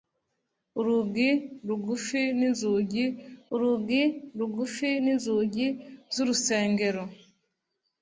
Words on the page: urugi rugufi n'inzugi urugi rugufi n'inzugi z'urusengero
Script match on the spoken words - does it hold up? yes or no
yes